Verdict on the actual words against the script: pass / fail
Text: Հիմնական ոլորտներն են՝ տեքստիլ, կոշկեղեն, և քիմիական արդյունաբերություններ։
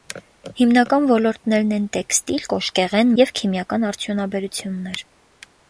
pass